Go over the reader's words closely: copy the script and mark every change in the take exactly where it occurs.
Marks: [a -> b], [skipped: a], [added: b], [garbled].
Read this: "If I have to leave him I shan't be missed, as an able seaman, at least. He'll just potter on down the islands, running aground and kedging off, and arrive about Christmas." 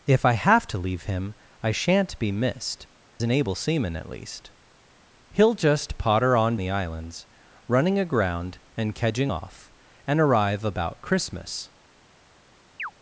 "If I have to leave him I shan't be missed, [skipped: as] an able seaman, at least. He'll just potter on [skipped: down] the islands, running aground and kedging off, and arrive about Christmas."